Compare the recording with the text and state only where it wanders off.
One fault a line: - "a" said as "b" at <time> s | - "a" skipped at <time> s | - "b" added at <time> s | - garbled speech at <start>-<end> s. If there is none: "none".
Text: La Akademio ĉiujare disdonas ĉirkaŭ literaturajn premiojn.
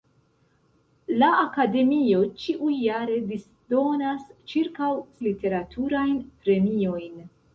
none